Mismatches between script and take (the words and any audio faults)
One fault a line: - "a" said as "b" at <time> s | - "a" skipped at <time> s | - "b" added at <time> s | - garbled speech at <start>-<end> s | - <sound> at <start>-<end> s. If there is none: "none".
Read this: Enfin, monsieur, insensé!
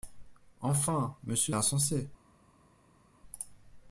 none